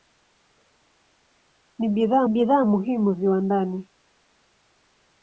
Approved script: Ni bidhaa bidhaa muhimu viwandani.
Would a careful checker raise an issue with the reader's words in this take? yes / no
no